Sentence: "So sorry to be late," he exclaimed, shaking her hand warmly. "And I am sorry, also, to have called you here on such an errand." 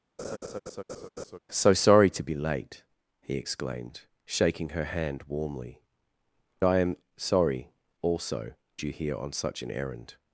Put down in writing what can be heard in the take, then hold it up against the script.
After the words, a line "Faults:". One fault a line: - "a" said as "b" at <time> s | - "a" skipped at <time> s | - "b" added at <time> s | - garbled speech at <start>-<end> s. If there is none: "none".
"So sorry to be late," he exclaimed, shaking her hand warmly. "I am sorry, also, you here on such an errand."
Faults:
- "And" skipped at 5.8 s
- "to have called" skipped at 8.5 s